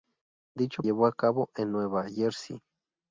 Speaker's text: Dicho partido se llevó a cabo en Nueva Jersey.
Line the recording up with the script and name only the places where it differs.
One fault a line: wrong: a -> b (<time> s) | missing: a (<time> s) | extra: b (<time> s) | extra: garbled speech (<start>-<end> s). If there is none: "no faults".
missing: partido se (0.8 s)